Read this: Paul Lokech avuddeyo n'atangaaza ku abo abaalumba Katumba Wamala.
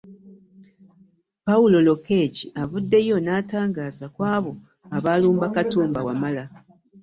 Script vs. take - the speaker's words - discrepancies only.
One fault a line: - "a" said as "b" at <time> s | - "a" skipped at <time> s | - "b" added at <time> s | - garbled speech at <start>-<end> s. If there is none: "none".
none